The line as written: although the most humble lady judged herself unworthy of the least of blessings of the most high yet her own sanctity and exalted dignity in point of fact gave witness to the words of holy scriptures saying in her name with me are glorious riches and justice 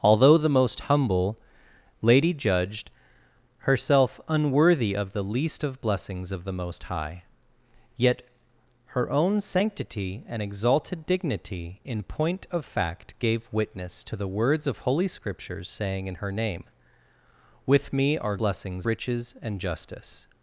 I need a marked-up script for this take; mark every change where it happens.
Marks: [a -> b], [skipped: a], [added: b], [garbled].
although the most humble lady judged herself unworthy of the least of blessings of the most high yet her own sanctity and exalted dignity in point of fact gave witness to the words of holy scriptures saying in her name with me are [glorious -> blessings] riches and justice